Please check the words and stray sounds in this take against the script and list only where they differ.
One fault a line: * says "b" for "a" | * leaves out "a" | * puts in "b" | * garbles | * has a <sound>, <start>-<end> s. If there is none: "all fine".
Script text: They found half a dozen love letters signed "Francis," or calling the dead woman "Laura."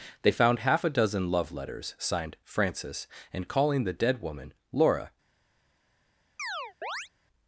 * says "and" for "or"
* has a chirp, 6.4-7.1 s